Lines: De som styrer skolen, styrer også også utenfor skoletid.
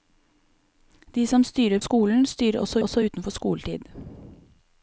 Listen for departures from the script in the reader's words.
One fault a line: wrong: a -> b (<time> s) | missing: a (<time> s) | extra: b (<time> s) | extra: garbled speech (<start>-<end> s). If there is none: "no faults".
no faults